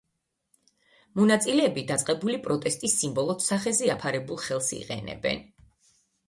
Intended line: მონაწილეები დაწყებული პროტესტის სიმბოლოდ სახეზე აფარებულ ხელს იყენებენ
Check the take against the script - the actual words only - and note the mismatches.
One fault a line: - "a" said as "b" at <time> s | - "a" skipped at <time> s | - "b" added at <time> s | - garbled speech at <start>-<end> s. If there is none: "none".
none